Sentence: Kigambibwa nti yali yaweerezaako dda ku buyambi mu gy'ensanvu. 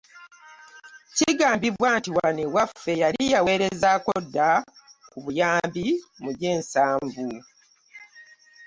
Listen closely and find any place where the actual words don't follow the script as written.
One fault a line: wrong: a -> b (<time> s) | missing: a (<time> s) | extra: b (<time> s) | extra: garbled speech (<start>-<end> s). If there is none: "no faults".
extra: wano ewaffe (2.2 s)